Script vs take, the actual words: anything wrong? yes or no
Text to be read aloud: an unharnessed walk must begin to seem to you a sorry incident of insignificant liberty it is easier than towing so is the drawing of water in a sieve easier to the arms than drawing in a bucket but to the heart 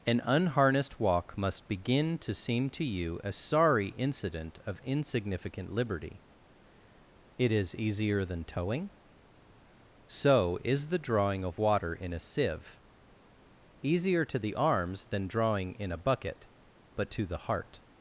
no